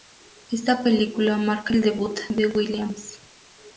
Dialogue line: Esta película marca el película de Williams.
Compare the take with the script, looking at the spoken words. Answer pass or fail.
fail